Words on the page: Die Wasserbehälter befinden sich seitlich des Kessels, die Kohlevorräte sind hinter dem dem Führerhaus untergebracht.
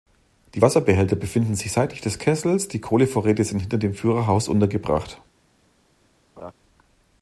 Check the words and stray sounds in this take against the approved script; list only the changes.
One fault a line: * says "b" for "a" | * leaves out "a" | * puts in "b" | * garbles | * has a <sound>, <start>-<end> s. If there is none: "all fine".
* leaves out "dem"
* has a laugh, 6.4-6.5 s